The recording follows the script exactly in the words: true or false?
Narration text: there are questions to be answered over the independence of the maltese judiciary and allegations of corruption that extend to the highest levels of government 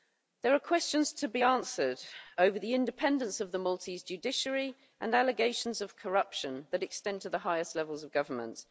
true